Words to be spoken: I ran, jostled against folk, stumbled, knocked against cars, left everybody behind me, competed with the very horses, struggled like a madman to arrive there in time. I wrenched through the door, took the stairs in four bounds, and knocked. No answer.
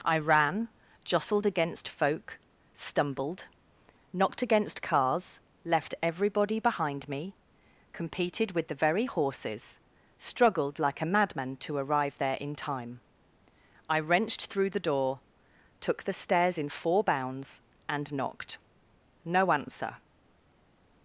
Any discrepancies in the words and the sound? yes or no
no